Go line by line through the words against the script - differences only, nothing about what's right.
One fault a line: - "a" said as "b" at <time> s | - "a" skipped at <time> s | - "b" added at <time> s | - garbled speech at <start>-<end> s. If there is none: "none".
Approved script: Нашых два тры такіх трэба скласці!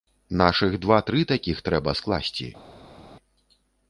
none